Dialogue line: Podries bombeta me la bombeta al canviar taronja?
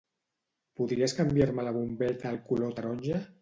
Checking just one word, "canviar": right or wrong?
wrong